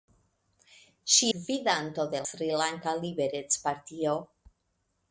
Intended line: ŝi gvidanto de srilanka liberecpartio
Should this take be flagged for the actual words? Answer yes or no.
no